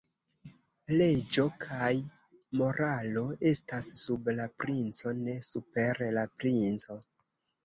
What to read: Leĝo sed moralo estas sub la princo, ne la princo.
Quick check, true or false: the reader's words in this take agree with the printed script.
false